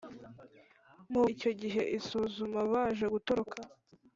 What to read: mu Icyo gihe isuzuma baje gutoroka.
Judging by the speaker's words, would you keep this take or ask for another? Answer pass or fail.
pass